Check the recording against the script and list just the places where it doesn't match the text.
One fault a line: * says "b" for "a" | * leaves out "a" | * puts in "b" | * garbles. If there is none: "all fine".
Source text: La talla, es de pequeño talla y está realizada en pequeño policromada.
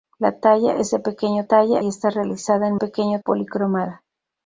all fine